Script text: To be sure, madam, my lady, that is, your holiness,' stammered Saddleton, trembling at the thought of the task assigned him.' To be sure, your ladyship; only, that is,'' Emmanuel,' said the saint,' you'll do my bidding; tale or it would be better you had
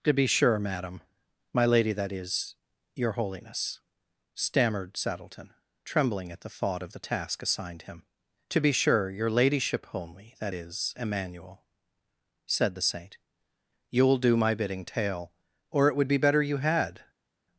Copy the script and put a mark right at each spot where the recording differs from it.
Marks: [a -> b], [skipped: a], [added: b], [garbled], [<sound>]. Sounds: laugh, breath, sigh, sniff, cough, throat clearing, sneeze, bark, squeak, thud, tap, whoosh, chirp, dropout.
To be sure, madam, my lady, that is, your holiness,' stammered Saddleton, trembling at the thought of the task assigned him.' To be sure, your ladyship; only, that is,'' Emmanuel,' said the saint,' you'll do my bidding; tale or it would be better you had